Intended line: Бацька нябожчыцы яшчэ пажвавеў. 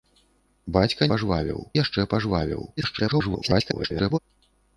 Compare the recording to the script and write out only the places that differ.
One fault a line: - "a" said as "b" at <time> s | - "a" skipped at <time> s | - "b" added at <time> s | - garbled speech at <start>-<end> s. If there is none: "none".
- "нябожчыцы" said as "пажвавеў" at 1.1 s
- garbled speech at 2.8-4.2 s